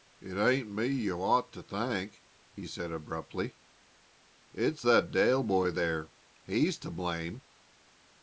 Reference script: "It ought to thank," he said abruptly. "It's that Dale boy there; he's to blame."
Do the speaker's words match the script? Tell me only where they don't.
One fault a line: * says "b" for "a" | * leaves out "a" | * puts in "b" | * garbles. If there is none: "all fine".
* puts in "ain't me you"